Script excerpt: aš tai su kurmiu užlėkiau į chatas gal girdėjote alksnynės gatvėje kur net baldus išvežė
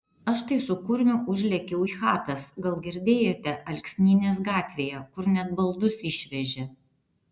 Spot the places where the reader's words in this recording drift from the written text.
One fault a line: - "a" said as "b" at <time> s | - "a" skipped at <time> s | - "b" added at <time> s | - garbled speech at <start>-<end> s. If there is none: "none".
none